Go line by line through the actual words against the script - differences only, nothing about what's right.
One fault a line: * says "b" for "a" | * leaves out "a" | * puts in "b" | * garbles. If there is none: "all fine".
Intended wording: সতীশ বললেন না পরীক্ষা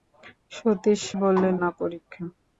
all fine